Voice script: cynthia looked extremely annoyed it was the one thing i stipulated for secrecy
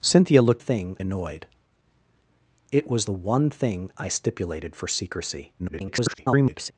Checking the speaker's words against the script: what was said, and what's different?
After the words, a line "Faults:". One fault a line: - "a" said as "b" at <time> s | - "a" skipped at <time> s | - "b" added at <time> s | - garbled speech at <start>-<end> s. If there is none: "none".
cynthia looked thing annoyed it was the one thing i stipulated for secrecy [garbled]
Faults:
- "extremely" said as "thing" at 0.6 s
- garbled speech at 5.6-6.7 s